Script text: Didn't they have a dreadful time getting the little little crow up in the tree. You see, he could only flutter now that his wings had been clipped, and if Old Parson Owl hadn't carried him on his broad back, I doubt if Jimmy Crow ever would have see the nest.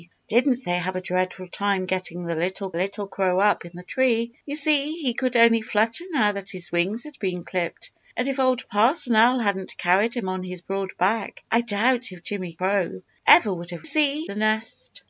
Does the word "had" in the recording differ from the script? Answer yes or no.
no